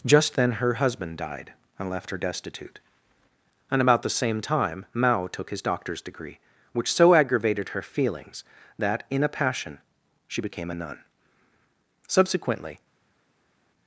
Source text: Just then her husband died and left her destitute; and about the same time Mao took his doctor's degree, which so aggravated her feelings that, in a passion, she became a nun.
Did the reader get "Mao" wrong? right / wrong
right